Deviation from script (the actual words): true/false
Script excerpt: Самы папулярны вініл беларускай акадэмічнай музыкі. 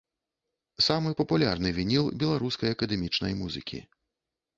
false